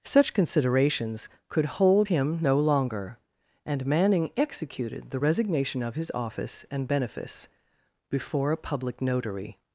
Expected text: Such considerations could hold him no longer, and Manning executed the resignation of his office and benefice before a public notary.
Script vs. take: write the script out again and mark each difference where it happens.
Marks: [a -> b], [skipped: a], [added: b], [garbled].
Such considerations could hold him no longer, and Manning executed the resignation of his office and benefice before a public notary.